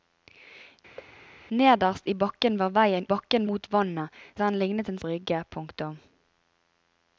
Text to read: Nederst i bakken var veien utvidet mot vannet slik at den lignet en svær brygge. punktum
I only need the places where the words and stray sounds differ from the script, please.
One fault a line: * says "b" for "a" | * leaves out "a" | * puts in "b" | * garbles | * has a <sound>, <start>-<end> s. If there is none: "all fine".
* has a thud, 1.0-1.1 s
* says "bakken" for "utvidet"
* leaves out "slik"
* leaves out "svær"